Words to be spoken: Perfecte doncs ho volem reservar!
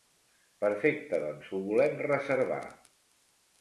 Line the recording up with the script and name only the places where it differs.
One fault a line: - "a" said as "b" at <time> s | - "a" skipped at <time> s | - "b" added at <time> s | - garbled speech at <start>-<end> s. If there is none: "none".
none